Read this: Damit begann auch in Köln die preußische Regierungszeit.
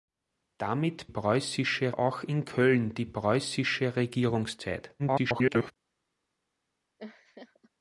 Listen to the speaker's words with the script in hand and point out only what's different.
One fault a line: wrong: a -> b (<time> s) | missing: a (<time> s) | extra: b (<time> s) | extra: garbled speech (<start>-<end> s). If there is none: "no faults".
wrong: begann -> preußische (1.1 s)
extra: garbled speech (5.0-5.7 s)